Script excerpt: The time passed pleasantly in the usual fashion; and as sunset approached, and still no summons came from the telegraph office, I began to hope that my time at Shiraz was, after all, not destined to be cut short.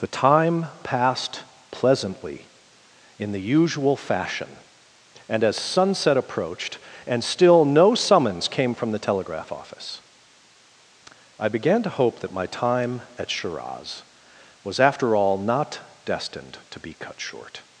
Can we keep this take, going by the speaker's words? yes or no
yes